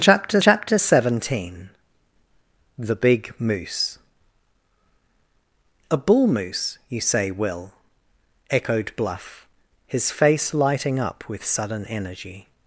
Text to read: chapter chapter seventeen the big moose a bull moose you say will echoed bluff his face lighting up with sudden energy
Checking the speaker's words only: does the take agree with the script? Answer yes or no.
yes